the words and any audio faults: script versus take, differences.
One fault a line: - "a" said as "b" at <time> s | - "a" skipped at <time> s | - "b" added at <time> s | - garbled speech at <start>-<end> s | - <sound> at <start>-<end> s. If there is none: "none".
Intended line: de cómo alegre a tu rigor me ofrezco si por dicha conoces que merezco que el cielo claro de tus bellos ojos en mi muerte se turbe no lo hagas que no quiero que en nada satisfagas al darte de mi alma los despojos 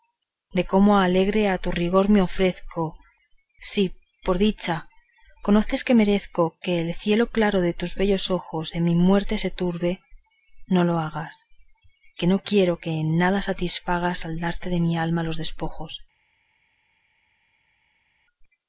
none